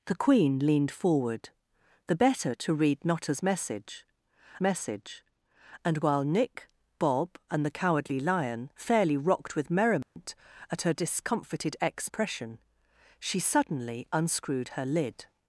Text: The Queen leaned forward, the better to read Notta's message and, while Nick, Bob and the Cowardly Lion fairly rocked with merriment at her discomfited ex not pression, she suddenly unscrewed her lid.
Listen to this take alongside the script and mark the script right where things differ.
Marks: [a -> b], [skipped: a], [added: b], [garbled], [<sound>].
The Queen leaned forward, the better to read Notta's message [added: message] and, while Nick, Bob and the Cowardly Lion fairly rocked with merriment [dropout] at her discomfited ex [skipped: not] pression, she suddenly unscrewed her lid.